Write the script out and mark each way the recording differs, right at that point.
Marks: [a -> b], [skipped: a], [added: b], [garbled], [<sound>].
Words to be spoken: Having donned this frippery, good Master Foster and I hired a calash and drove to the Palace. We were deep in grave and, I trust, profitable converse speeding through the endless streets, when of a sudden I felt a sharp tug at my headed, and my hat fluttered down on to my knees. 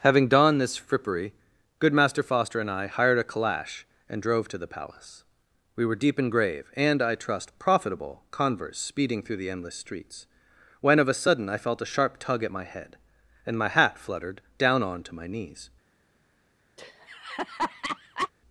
Having donned this frippery, good Master Foster and I hired a calash and drove to the Palace. We were deep in grave and, I trust, profitable converse speeding through the endless streets, when of a sudden I felt a sharp tug at my [headed, -> head] and my hat fluttered down on to my knees. [laugh]